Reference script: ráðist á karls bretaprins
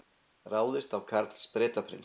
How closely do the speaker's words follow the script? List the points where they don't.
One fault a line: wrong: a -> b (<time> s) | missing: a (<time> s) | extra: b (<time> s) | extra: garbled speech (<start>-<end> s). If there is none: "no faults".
no faults